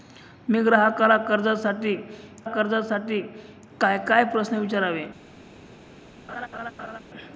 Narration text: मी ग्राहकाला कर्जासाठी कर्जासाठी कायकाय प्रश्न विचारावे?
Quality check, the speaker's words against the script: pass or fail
pass